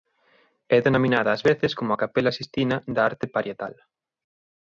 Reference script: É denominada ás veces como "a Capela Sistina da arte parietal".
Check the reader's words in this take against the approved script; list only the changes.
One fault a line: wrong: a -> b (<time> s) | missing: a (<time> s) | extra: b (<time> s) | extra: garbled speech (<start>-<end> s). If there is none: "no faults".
no faults